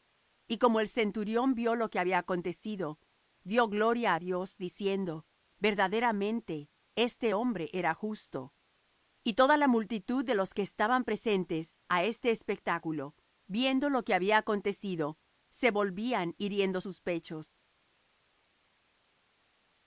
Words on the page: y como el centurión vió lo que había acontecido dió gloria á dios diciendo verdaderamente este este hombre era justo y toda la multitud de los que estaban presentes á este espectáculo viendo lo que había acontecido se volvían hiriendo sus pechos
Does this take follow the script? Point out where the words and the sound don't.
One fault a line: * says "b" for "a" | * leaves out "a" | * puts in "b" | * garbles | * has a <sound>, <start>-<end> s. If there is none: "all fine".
* leaves out "este"